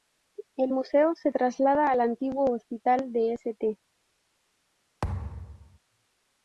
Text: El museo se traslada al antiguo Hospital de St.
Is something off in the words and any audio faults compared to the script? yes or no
yes